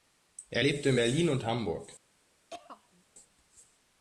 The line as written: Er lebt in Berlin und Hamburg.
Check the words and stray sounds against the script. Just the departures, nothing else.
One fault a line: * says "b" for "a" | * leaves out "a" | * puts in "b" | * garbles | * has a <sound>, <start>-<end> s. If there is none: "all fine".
* has a throat clearing, 2.5-3.0 s